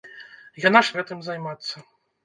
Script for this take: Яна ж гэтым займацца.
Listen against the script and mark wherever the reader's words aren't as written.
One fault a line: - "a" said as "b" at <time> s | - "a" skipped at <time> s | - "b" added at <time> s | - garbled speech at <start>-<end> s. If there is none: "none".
none